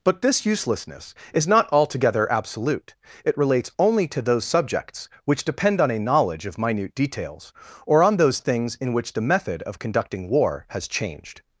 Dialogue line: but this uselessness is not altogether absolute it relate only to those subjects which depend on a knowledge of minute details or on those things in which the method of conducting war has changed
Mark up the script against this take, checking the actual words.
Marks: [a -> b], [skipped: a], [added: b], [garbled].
but this uselessness is not altogether absolute it [relate -> relates] only to those subjects which depend on a knowledge of minute details or on those things in which the method of conducting war has changed